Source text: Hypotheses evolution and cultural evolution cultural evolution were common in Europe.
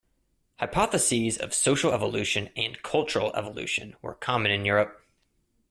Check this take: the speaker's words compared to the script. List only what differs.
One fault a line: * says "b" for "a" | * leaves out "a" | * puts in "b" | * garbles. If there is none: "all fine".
* puts in "of social"
* leaves out "cultural evolution"